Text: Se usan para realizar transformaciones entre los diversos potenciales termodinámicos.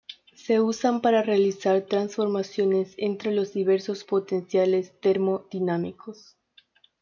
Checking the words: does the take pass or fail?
pass